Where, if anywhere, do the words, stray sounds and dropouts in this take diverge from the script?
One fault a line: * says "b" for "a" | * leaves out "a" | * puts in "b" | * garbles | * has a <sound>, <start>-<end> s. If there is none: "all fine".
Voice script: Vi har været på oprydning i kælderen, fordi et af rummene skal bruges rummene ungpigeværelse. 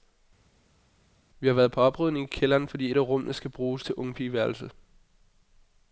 * says "til" for "rummene"